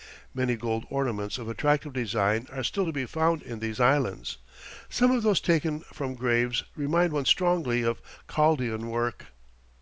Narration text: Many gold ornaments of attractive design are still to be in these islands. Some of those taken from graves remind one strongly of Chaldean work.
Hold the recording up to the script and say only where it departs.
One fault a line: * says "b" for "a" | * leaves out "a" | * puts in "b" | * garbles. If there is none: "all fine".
* puts in "found"